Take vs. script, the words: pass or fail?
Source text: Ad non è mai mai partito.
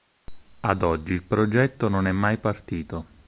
fail